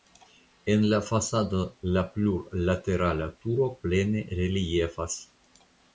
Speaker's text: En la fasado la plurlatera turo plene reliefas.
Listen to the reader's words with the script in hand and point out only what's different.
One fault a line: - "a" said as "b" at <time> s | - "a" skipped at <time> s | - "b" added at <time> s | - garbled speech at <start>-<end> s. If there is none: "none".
none